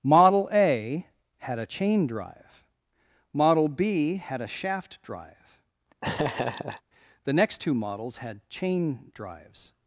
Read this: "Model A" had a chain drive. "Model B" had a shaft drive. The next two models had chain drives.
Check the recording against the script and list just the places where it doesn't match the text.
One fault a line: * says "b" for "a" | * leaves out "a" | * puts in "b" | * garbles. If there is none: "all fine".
all fine